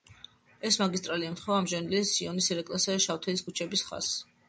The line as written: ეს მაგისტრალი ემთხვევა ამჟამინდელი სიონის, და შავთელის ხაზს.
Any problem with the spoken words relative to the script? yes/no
yes